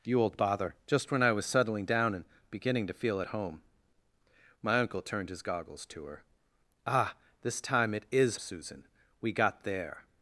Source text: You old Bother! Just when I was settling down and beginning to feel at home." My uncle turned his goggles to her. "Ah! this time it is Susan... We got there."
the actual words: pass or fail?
pass